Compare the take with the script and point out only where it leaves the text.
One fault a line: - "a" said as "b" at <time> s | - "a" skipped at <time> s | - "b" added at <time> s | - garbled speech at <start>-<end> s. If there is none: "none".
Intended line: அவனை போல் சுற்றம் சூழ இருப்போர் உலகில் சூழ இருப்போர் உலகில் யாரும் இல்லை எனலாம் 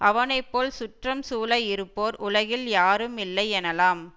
- "சூழ இருப்போர் உலகில்" skipped at 2.7 s